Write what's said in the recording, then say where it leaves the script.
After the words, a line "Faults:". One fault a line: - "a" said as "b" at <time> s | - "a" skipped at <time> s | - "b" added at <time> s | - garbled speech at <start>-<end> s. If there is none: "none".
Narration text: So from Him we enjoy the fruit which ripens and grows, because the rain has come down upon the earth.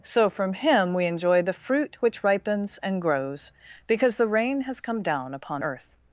So from Him we enjoy the fruit which ripens and grows, because the rain has come down upon earth.
Faults:
- "the" skipped at 5.6 s